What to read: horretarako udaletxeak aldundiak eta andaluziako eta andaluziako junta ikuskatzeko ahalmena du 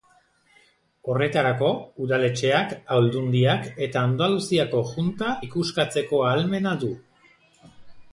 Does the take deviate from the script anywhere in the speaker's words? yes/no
yes